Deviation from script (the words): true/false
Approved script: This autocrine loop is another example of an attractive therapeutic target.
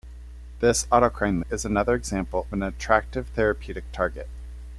true